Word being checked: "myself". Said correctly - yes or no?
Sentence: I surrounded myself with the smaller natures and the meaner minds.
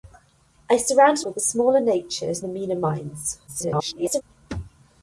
no